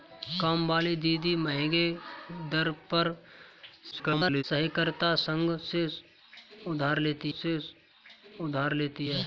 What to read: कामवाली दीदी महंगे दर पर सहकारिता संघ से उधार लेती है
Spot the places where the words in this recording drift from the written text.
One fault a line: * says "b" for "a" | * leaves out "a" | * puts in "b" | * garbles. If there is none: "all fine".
* garbles
* puts in "से उधार लेती"